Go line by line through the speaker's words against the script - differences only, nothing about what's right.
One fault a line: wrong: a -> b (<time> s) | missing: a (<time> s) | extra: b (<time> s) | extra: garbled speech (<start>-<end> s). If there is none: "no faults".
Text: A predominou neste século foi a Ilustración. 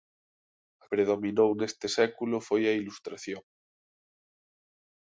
no faults